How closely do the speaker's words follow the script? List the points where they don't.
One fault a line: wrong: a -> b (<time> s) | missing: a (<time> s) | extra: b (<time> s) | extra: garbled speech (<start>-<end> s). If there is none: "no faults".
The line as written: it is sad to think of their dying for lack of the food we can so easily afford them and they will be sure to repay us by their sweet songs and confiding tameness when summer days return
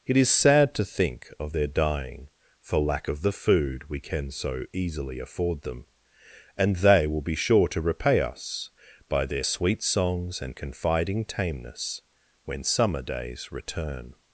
no faults